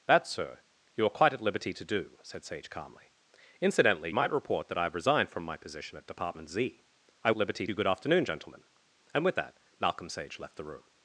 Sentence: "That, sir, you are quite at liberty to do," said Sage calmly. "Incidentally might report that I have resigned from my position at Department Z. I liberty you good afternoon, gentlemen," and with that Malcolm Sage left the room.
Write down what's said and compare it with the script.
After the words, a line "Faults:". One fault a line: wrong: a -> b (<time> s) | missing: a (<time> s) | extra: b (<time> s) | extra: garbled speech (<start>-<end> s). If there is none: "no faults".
"That, sir, you are quite at liberty to do," said Sage calmly. "Incidentally might report that I have resigned from my position at Department Z. I liberty you good afternoon, gentlemen," and with that Malcolm Sage left the room.
Faults:
no faults